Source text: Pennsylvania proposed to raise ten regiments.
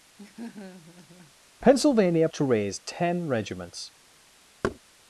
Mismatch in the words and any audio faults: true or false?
true